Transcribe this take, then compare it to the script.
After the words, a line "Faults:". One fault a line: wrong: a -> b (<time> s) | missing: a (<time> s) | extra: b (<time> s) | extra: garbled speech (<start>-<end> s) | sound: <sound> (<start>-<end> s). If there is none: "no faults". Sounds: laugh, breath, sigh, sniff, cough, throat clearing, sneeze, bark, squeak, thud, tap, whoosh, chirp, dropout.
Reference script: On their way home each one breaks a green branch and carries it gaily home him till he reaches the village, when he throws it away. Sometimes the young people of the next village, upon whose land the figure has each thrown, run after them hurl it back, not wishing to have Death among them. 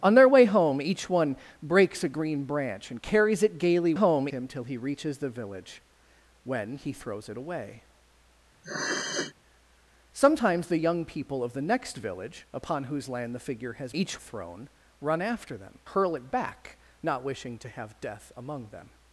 On their way home each one breaks a green branch and carries it gaily home him till he reaches the village, when he throws it away. Sometimes the young people of the next village, upon whose land the figure has each thrown, run after them hurl it back, not wishing to have Death among them.
Faults:
sound: sniff (8.6-9.3 s)